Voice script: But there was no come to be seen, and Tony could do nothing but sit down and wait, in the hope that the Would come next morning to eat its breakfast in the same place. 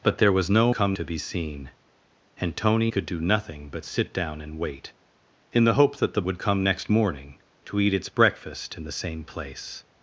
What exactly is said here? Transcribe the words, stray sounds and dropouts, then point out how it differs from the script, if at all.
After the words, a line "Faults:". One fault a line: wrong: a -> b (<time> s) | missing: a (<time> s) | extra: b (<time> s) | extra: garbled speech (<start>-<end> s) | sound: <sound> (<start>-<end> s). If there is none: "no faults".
But there was no come to be seen, and Tony could do nothing but sit down and wait, in the hope that the Would come next morning to eat its breakfast in the same place.
Faults:
no faults